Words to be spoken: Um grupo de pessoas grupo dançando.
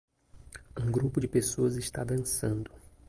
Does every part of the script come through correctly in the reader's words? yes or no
no